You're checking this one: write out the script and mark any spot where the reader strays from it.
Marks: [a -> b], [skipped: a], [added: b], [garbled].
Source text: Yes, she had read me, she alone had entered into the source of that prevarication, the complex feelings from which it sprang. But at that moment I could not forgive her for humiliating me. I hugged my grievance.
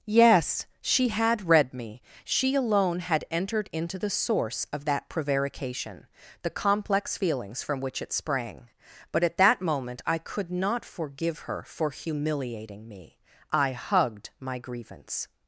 Yes, she had read me, she alone had entered into the source of that prevarication, the complex feelings from which it sprang. But at that moment I could not forgive her for humiliating me. I hugged my grievance.